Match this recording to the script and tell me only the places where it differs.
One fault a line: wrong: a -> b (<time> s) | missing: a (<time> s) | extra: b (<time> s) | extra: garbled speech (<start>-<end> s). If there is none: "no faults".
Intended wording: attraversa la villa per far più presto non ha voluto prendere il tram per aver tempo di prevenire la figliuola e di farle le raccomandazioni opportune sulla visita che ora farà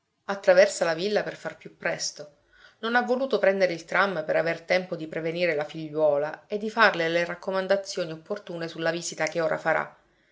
no faults